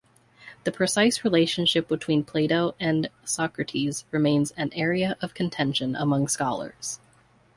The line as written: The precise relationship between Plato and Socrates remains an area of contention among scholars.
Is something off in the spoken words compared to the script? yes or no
no